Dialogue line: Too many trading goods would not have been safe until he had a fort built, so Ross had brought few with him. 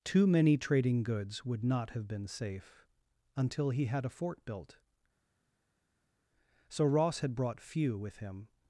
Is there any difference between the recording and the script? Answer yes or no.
no